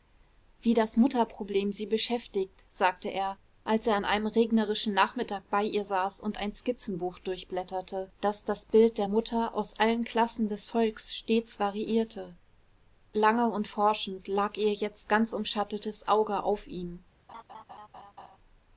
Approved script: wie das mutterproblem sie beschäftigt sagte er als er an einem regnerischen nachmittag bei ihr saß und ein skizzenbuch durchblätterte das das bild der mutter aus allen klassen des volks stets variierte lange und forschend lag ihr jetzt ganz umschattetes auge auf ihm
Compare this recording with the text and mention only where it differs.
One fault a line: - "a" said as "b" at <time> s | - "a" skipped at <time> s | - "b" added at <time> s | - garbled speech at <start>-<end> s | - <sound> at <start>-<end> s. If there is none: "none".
- laugh at 17.3-18.4 s